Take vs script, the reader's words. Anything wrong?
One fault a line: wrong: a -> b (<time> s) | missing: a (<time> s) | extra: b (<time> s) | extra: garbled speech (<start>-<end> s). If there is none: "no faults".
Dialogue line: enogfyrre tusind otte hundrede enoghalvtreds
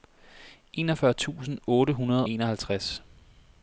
no faults